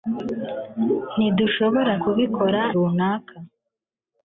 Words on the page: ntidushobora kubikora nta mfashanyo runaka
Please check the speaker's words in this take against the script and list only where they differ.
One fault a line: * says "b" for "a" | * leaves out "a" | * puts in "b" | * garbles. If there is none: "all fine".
* leaves out "nta mfashanyo"